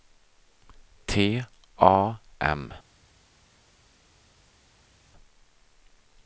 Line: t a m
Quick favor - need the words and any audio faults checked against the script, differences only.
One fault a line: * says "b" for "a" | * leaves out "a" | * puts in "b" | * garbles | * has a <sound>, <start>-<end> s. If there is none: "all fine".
all fine